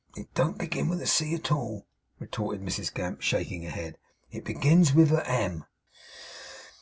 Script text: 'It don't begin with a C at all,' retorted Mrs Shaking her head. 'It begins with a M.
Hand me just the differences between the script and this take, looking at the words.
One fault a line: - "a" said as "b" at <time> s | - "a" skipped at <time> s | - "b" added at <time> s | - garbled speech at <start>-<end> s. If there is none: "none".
- "Gamp" added at 2.9 s